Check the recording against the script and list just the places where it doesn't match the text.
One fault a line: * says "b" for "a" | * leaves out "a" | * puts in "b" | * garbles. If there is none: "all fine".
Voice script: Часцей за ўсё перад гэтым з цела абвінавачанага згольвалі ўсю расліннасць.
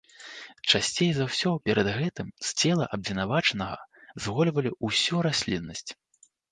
all fine